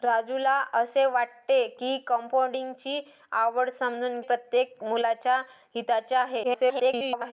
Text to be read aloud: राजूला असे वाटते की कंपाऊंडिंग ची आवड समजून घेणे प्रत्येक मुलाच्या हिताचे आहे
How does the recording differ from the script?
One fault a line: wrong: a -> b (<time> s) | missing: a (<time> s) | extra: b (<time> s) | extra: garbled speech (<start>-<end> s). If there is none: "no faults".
missing: घेणे (4.2 s)
extra: garbled speech (6.4-7.3 s)